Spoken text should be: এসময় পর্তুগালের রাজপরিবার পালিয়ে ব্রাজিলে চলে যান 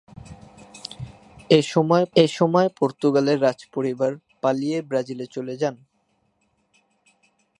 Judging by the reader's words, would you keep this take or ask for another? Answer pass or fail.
fail